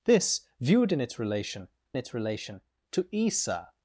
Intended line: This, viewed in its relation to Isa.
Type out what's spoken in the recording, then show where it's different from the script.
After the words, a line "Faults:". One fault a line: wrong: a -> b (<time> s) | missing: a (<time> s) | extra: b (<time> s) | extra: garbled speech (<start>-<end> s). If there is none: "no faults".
This, viewed in its relation its relation to Isa.
Faults:
extra: its relation (1.9 s)